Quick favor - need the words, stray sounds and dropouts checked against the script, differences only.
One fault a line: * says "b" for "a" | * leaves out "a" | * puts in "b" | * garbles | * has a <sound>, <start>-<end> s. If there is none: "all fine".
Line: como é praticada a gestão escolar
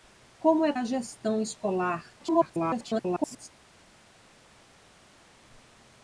* leaves out "praticada"
* garbles